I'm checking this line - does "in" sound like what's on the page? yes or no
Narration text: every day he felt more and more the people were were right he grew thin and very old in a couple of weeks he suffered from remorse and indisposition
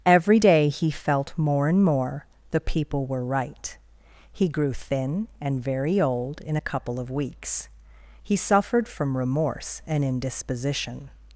yes